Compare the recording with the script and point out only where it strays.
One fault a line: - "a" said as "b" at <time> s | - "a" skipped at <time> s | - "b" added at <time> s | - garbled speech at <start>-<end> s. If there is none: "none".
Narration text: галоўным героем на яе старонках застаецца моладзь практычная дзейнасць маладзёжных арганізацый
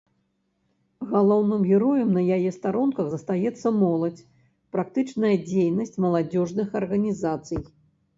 none